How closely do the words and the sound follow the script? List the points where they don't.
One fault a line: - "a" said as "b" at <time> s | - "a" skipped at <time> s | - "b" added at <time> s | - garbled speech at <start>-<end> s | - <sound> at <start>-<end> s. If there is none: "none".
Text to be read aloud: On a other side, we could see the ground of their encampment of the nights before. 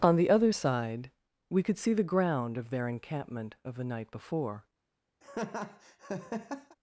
- "a" said as "the" at 0.1 s
- "nights" said as "night" at 3.8 s
- laugh at 5.2-6.8 s